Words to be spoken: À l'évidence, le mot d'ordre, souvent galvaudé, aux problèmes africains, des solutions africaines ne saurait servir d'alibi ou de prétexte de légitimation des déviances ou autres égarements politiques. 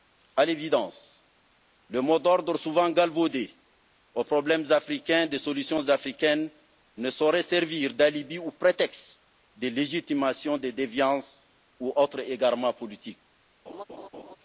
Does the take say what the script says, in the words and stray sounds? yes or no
no